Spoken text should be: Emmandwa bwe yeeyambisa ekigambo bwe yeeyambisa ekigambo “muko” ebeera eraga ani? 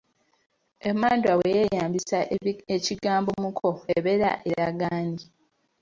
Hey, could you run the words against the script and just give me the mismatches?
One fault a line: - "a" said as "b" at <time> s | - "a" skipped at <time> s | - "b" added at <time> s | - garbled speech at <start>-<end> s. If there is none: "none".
- "bwe yeeyambisa ekigambo" skipped at 3.3 s